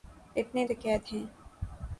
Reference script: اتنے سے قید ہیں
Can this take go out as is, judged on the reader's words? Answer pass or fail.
pass